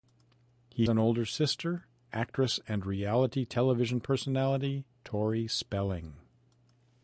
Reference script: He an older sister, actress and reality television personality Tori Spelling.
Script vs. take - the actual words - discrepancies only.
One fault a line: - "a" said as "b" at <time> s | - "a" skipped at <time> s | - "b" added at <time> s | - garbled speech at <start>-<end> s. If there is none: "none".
none